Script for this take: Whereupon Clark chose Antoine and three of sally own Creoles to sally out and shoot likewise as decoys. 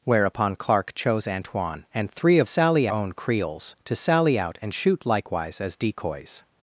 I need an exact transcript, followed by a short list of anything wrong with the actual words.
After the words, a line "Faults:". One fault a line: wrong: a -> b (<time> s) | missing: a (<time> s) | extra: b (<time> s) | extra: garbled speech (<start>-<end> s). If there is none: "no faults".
Whereupon Clark chose Antoine and three of sally own Creoles to sally out and shoot likewise as decoys.
Faults:
no faults